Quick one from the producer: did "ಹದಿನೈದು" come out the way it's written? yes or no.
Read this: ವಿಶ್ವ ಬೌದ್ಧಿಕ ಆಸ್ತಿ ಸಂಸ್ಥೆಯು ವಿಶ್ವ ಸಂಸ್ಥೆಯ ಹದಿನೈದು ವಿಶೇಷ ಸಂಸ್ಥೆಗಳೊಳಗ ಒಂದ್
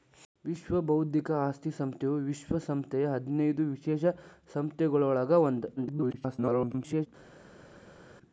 yes